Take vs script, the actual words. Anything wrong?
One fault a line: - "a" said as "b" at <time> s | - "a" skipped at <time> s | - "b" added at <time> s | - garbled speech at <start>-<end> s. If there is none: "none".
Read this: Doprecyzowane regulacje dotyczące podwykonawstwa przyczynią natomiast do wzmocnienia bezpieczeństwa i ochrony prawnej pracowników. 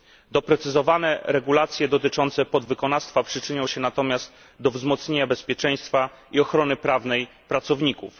- "się" added at 3.7 s